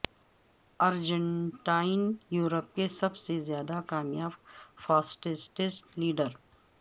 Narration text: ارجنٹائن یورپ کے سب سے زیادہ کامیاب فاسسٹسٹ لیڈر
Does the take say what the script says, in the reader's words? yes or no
yes